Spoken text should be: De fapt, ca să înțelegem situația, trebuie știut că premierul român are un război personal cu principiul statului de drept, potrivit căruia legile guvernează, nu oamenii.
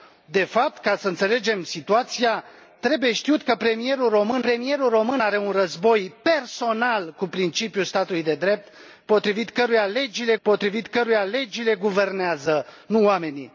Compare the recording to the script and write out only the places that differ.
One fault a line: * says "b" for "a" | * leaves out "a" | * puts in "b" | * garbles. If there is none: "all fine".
* puts in "premierul român"
* puts in "potrivit căruia legile"